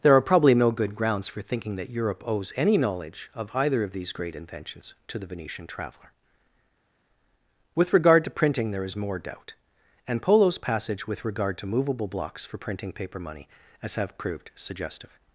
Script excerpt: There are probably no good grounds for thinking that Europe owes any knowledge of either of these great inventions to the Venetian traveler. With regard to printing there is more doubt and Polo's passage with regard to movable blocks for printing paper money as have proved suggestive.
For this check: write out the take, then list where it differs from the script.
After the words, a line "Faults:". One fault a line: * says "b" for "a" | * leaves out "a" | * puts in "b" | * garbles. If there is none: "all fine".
There are probably no good grounds for thinking that Europe owes any knowledge of either of these great inventions to the Venetian traveler. With regard to printing there is more doubt and Polo's passage with regard to movable blocks for printing paper money as have proved suggestive.
Faults:
all fine